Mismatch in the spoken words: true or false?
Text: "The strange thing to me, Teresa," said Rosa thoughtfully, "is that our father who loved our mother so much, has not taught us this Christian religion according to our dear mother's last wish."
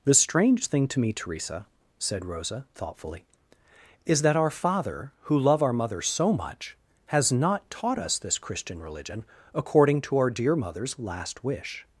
true